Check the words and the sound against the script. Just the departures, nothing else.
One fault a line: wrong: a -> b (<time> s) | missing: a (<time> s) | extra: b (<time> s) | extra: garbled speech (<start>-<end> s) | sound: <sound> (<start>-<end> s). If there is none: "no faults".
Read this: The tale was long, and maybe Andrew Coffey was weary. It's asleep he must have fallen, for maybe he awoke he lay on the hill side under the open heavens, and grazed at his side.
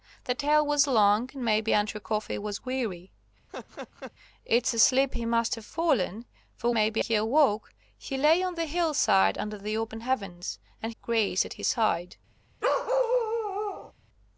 sound: laugh (3.5-4.1 s)
sound: bark (12.6-13.9 s)